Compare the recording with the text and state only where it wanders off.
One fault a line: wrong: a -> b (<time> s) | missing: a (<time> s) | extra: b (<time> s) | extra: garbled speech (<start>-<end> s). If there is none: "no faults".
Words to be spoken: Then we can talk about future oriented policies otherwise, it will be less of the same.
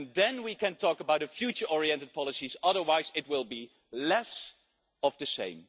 no faults